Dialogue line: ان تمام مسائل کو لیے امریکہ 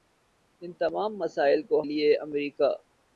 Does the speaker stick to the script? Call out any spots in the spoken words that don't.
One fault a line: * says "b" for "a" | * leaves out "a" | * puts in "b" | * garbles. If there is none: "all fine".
all fine